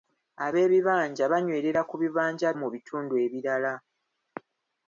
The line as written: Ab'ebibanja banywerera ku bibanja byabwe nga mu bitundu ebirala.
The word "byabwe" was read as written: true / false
false